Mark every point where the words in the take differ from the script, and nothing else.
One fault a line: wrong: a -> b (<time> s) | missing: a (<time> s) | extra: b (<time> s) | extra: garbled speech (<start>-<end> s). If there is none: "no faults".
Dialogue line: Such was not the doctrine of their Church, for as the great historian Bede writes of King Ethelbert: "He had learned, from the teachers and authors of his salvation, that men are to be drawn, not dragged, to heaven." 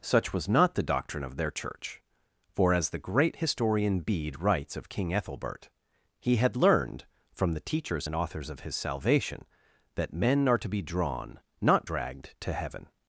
no faults